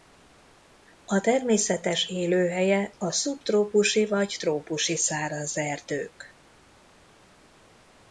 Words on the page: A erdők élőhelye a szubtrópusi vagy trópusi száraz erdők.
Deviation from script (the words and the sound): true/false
true